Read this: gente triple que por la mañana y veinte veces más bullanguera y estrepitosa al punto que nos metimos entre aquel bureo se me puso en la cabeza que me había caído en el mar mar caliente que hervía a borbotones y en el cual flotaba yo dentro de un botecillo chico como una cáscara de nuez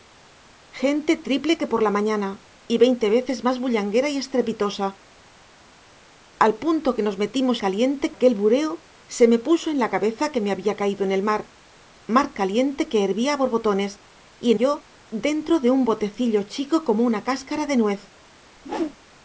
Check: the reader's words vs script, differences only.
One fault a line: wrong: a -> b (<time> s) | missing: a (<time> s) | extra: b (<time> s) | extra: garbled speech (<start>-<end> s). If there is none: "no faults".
wrong: entre -> caliente (7.6 s)
missing: el cual flotaba (14.6 s)